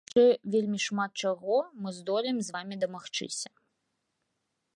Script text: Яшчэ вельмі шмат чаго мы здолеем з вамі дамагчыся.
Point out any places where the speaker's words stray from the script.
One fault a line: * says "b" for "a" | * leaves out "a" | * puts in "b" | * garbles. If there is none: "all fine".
all fine